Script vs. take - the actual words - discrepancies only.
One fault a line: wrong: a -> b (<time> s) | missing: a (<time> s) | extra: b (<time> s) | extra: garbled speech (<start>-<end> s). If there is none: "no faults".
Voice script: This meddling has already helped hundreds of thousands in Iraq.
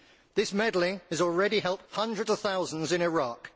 no faults